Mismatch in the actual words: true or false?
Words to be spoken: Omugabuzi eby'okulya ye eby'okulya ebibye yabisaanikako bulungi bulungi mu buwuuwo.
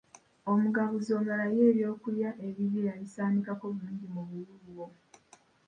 true